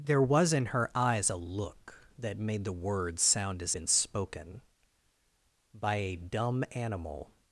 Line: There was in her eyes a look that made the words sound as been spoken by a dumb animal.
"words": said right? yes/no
yes